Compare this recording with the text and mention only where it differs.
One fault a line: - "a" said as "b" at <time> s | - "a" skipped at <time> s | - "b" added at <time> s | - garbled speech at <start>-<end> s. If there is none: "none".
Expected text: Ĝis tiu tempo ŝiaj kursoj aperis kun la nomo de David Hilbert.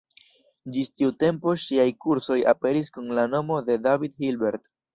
none